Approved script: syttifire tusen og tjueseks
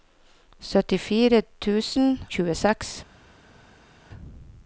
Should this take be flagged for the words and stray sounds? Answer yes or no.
yes